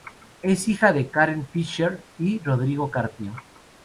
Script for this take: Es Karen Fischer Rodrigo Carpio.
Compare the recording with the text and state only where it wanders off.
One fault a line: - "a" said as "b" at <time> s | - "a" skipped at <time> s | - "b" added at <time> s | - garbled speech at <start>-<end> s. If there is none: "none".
- "hija de" added at 0.7 s
- "y" added at 2.2 s